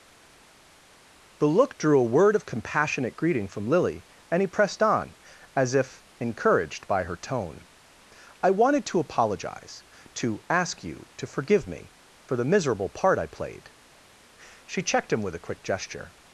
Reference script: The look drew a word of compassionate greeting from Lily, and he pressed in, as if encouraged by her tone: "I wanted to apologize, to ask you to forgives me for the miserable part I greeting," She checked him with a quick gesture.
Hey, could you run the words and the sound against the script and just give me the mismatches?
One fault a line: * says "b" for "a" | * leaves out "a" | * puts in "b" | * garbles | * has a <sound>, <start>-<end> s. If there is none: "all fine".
* says "on" for "in"
* says "forgive" for "forgives"
* says "played" for "greeting"